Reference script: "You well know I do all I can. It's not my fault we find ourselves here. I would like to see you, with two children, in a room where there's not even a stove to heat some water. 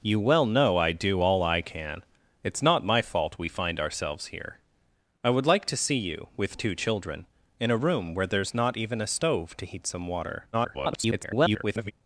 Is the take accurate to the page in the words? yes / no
no